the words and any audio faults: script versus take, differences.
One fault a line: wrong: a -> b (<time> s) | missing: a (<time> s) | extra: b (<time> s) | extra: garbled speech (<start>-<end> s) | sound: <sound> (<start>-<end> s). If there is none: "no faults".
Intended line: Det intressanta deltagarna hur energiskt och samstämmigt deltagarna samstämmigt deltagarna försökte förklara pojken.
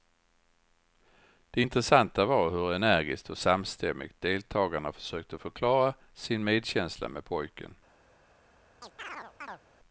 wrong: deltagarna -> var (2.2 s)
wrong: samstämmigt deltagarna försökte förklara -> försökte förklara sin medkänsla med (4.9 s)
sound: chirp (8.8-9.6 s)